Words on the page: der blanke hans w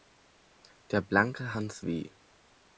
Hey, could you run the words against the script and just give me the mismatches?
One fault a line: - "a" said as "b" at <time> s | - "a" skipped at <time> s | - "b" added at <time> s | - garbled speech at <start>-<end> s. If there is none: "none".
none